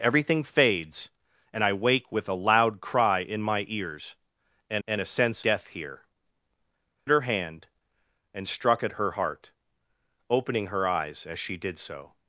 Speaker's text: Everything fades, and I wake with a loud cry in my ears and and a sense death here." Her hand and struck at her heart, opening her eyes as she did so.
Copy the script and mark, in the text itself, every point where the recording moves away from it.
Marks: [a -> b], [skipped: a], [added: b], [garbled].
Everything fades, and I wake with a loud cry in my ears and and a sense death here." Her hand and struck at her heart, opening her eyes as she did so.